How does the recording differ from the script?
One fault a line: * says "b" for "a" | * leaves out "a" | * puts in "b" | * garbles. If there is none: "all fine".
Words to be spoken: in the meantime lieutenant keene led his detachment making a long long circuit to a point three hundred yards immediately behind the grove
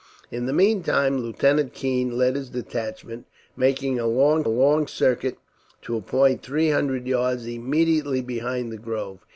all fine